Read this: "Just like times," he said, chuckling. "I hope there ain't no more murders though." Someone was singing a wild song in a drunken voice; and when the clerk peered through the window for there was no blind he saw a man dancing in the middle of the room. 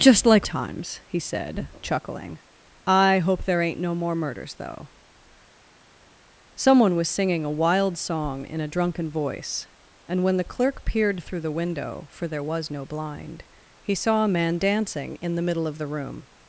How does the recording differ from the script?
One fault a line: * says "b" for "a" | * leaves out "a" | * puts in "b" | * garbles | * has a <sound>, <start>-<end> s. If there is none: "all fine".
all fine